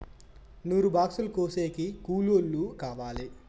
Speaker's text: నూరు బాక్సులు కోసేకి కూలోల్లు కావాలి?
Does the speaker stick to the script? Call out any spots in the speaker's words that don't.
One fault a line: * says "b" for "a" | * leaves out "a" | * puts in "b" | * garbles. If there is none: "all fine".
all fine